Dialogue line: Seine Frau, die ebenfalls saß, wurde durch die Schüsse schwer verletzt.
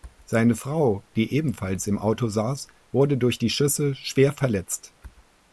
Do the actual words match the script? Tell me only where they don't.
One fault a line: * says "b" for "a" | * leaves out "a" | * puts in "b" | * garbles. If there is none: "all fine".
* puts in "im Auto"